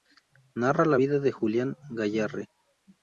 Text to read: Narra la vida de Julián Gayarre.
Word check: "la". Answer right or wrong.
right